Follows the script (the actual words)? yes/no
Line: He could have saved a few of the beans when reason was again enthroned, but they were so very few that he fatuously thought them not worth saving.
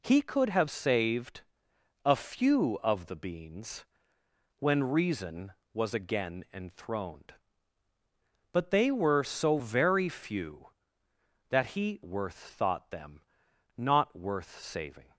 no